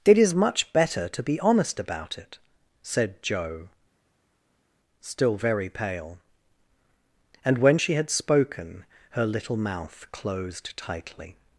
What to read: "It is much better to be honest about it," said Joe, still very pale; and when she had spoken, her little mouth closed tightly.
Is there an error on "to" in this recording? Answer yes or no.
no